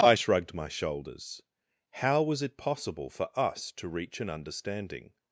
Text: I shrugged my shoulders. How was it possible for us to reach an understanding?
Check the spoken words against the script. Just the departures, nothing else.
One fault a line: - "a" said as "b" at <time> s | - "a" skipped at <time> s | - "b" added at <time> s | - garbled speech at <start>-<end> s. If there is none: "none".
none